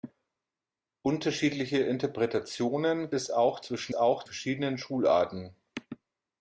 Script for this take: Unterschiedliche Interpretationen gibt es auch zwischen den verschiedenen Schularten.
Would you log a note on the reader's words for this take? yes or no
yes